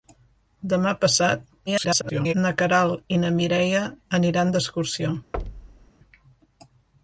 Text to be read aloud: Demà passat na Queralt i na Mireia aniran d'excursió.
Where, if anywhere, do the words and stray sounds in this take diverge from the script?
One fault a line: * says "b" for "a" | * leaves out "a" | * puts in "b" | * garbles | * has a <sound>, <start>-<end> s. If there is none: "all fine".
* garbles
* has a thud, 5.3-5.9 s